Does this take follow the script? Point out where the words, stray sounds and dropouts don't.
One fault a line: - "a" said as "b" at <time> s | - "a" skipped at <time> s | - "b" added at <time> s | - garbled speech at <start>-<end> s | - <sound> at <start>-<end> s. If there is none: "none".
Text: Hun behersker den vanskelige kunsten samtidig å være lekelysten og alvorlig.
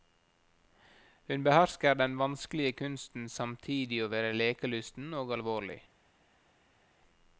none